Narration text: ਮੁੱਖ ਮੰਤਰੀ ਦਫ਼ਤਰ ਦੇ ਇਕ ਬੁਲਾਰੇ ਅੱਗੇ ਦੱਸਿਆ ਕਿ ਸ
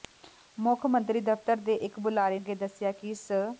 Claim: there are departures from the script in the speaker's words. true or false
false